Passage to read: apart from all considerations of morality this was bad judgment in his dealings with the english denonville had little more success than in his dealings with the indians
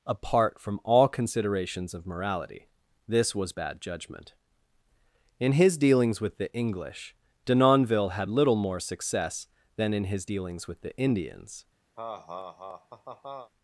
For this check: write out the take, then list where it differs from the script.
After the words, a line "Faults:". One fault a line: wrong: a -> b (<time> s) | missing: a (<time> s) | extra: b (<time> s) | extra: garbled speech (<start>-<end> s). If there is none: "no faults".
apart from all considerations of morality this was bad judgment in his dealings with the english denonville had little more success than in his dealings with the indians
Faults:
no faults